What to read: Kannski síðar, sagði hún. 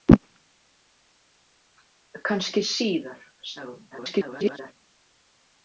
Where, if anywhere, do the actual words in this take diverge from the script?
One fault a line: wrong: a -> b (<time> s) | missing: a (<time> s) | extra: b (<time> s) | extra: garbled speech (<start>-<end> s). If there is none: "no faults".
extra: garbled speech (3.9-4.7 s)